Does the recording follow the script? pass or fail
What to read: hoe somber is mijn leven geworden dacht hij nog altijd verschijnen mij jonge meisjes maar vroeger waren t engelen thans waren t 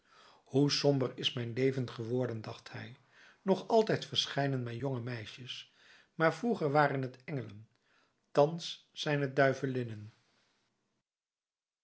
fail